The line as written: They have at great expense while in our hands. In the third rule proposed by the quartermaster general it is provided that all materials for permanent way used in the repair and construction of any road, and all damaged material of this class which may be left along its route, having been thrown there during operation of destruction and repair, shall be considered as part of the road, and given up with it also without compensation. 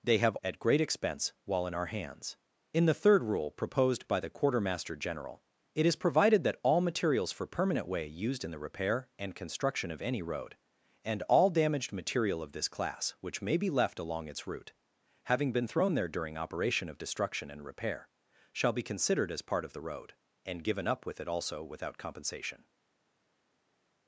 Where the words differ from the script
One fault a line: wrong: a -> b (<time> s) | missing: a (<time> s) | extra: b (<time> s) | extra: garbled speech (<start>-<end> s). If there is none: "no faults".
no faults